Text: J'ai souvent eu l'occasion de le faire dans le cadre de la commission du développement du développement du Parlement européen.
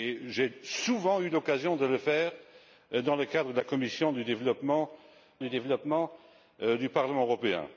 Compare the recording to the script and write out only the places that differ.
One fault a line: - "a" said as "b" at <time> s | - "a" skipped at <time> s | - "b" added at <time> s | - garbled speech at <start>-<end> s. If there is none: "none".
none